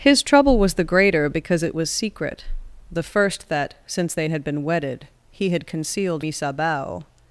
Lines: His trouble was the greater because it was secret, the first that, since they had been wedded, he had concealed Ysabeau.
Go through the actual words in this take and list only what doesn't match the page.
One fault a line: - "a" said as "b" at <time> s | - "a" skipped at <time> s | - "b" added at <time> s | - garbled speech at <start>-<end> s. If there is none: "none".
none